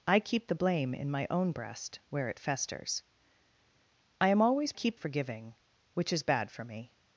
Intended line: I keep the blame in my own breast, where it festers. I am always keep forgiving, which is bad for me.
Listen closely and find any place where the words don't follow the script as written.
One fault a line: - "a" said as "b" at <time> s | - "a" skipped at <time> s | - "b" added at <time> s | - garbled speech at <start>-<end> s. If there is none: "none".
none